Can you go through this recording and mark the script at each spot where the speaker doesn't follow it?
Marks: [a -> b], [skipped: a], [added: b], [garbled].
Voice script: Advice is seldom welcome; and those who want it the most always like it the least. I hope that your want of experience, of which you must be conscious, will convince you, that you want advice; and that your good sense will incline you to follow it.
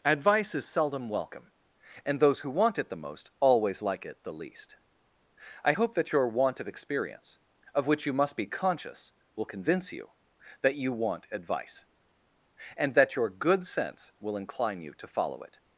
Advice is seldom welcome; and those who want it the most always like it the least. I hope that your want of experience, of which you must be conscious, will convince you, that you want advice; and that your good sense will incline you to follow it.